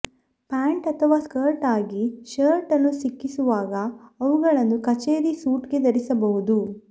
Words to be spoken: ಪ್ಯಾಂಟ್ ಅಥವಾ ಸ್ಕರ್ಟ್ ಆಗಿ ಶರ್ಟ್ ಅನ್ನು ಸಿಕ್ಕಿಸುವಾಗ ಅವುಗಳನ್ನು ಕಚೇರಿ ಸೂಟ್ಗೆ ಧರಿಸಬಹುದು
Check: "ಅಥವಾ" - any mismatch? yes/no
no